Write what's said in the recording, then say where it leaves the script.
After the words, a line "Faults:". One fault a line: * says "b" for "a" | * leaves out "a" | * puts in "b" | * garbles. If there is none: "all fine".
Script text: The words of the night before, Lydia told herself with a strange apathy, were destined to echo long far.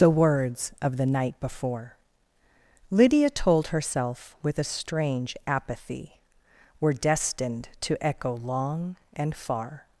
The words of the night before, Lydia told herself with a strange apathy, were destined to echo long and far.
Faults:
* puts in "and"